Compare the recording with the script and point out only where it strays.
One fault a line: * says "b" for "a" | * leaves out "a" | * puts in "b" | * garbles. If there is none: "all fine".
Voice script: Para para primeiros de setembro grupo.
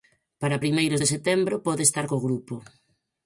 * leaves out "para"
* puts in "pode estar co"